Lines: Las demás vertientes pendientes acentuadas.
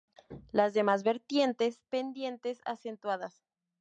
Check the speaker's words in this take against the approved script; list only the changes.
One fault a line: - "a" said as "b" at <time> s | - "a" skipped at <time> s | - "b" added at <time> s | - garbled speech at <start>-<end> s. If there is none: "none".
none